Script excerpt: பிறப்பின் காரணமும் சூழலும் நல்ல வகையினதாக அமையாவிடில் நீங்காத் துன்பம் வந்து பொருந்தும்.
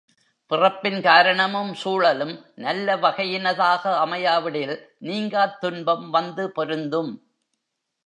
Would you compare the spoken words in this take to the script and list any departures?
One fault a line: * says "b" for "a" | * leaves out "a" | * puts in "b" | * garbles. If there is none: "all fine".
all fine